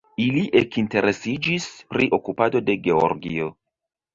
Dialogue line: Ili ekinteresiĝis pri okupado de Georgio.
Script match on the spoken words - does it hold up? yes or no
yes